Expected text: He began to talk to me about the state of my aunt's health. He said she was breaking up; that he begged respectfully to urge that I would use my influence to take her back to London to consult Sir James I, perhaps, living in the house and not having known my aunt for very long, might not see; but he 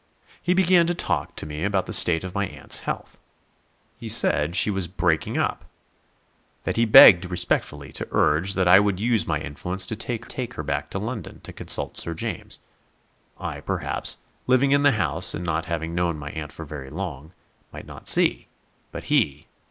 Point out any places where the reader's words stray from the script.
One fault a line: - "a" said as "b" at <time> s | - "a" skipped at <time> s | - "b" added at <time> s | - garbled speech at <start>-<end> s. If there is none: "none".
- "take" added at 10.2 s